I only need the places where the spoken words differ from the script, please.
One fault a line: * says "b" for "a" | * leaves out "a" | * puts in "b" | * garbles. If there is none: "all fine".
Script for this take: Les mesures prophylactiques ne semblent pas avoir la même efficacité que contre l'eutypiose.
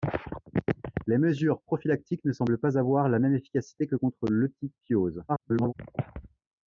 * garbles